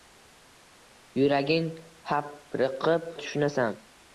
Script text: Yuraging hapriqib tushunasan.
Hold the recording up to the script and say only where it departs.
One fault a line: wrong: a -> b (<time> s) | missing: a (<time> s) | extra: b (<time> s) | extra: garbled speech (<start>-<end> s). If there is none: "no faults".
no faults